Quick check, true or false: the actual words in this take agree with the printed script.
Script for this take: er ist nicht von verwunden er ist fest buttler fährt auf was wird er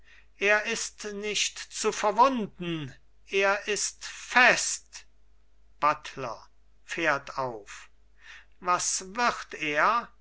false